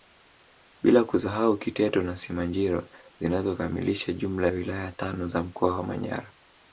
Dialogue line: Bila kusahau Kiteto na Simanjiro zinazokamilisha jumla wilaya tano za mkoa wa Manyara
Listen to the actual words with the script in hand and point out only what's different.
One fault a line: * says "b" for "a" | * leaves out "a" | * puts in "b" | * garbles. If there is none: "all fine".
all fine